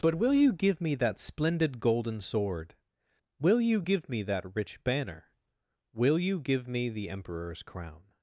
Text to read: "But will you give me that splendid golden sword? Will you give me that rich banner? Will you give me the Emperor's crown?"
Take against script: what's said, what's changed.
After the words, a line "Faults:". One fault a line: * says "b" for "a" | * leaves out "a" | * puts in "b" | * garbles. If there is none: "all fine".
"But will you give me that splendid golden sword? Will you give me that rich banner? Will you give me the Emperor's crown?"
Faults:
all fine